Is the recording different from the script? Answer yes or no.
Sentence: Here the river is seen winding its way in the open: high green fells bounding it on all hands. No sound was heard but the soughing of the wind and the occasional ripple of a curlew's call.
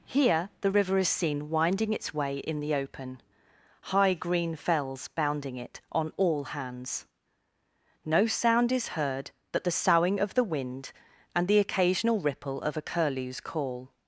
yes